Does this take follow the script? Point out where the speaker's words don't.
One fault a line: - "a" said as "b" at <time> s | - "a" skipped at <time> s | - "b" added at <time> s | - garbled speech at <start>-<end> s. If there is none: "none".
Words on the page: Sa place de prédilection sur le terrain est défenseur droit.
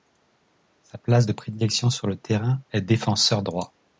none